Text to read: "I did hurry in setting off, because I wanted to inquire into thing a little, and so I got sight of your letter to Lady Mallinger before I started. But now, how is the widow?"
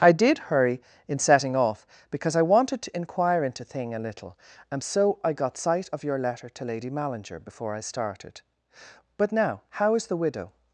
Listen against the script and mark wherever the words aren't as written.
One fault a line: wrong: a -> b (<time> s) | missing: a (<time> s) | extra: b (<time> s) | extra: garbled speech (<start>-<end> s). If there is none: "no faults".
no faults